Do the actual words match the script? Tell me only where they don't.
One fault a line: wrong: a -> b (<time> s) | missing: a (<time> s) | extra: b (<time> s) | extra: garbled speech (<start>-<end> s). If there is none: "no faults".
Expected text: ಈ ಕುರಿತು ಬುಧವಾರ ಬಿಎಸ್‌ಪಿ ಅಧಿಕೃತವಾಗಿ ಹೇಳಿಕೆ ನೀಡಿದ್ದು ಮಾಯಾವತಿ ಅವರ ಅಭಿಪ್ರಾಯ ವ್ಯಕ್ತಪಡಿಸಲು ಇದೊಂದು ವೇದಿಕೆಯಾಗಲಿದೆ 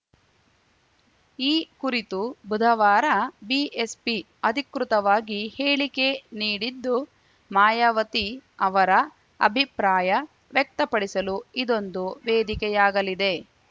no faults